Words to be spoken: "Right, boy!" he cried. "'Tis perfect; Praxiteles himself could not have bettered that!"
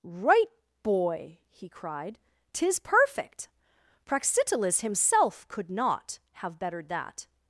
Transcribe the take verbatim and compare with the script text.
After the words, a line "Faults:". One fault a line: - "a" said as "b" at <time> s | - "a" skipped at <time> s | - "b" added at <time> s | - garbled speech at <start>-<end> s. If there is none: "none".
"Right, boy!" he cried. "'Tis perfect; Praxiteles himself could not have bettered that!"
Faults:
none